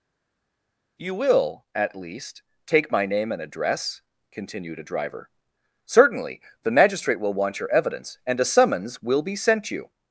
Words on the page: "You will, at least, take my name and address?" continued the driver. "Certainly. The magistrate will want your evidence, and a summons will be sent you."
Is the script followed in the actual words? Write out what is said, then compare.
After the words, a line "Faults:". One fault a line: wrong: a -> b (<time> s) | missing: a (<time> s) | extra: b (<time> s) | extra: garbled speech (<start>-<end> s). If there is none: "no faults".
"You will, at least, take my name and address?" continued a driver. "Certainly. The magistrate will want your evidence, and a summons will be sent you."
Faults:
wrong: the -> a (4.8 s)